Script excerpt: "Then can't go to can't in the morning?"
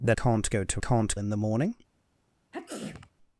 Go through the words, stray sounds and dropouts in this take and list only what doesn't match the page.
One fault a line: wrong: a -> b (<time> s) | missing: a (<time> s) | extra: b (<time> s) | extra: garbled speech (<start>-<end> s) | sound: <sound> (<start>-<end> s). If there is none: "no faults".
sound: sneeze (2.5-3.1 s)